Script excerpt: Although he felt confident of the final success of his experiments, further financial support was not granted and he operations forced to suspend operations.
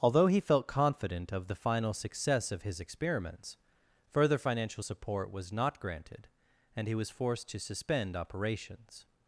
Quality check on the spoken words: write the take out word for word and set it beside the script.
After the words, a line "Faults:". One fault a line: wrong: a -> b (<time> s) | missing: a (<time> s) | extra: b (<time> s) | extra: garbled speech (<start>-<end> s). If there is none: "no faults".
Although he felt confident of the final success of his experiments, further financial support was not granted and he was forced to suspend operations.
Faults:
wrong: operations -> was (6.9 s)